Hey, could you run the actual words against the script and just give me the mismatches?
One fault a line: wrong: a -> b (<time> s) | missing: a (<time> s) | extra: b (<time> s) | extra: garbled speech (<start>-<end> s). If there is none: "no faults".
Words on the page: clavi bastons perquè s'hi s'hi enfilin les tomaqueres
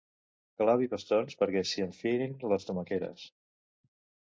missing: s'hi (1.9 s)